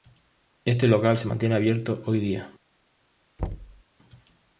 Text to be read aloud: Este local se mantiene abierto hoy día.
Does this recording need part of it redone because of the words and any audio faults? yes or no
yes